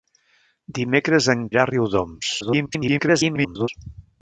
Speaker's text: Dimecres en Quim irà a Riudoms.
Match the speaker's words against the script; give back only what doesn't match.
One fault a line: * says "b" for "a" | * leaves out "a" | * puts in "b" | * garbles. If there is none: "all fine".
* leaves out "Quim"
* garbles